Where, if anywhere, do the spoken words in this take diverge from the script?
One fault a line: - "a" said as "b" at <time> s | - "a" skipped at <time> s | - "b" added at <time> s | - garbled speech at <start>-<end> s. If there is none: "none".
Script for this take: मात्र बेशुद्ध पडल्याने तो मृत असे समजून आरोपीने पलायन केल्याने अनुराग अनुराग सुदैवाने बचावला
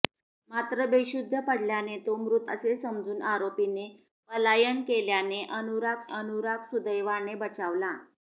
none